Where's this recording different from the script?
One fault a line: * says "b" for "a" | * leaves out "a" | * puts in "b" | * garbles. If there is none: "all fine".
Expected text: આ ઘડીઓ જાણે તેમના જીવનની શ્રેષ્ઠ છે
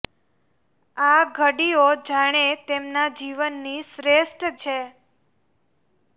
all fine